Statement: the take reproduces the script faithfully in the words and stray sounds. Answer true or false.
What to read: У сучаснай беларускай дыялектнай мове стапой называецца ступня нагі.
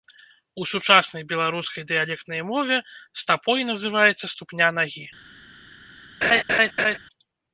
false